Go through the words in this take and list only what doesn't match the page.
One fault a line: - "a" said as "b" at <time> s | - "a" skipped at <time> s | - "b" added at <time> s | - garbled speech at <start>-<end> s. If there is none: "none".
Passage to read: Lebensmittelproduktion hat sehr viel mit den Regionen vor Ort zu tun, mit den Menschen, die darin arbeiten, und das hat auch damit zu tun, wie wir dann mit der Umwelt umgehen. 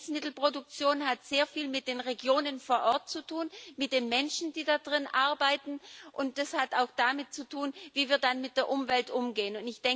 none